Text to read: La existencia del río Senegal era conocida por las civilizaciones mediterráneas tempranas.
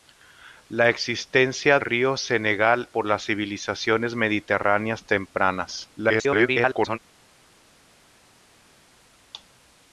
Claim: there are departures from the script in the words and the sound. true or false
true